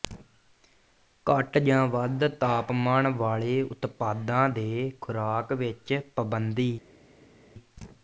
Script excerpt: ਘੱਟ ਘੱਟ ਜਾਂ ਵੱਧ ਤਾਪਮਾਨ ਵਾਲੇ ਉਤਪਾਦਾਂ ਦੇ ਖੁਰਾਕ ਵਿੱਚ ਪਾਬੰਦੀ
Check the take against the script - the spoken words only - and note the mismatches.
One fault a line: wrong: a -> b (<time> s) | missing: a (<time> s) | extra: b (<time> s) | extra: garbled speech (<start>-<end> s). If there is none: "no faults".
missing: ਘੱਟ (1.6 s)